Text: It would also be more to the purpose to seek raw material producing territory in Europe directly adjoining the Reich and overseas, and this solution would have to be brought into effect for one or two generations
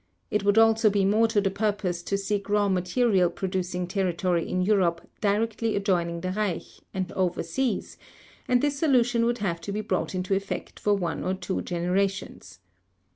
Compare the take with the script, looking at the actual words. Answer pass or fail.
pass